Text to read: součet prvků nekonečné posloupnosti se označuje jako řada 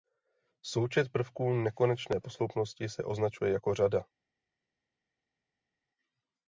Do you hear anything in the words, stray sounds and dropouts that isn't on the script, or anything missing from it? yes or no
no